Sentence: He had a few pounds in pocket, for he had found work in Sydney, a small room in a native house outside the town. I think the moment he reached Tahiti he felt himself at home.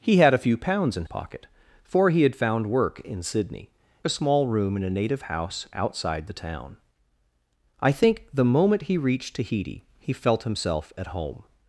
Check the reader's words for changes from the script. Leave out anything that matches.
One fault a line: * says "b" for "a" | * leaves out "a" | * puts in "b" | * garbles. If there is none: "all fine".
all fine